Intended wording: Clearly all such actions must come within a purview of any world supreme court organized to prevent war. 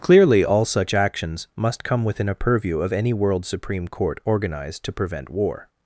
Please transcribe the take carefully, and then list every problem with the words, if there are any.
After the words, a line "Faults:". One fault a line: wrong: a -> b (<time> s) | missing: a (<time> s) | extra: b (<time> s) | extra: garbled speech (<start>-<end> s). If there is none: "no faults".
Clearly all such actions must come within a purview of any world supreme court organized to prevent war.
Faults:
no faults